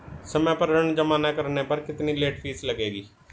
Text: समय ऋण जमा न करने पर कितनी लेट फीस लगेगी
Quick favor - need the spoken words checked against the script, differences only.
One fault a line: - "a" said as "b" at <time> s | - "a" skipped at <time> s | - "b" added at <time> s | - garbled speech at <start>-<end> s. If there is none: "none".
- "पर" added at 0.6 s